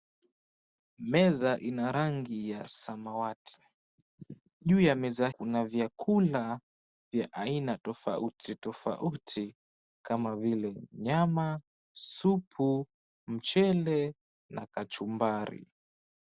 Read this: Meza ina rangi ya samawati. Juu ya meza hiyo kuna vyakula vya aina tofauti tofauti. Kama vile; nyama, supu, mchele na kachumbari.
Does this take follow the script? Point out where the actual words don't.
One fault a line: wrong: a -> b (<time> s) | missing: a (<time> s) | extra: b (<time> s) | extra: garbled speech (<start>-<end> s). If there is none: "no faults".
missing: hiyo (5.3 s)